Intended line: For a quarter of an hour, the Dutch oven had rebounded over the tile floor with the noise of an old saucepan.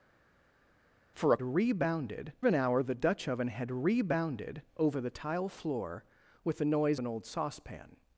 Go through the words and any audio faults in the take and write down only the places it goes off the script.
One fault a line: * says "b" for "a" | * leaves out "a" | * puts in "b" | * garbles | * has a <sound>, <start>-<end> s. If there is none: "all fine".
* says "rebounded" for "quarter"
* leaves out "of"